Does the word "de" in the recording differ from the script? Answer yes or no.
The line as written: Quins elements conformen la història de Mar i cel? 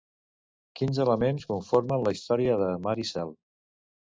no